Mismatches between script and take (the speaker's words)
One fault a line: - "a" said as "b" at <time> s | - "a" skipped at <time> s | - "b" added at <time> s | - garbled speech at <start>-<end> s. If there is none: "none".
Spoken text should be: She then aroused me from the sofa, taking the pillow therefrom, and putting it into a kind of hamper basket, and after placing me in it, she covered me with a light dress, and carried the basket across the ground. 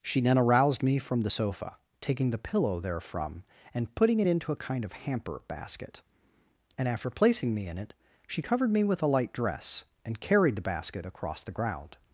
none